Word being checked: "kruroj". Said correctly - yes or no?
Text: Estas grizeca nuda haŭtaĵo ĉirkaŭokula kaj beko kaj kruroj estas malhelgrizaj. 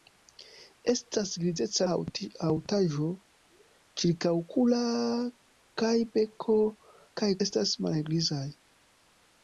no